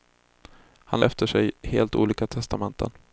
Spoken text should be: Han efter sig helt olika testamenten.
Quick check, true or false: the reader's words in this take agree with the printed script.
true